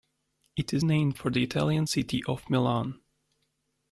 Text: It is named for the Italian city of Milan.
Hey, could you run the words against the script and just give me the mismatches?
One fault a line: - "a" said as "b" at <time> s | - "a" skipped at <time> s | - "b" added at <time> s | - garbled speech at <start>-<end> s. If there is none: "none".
none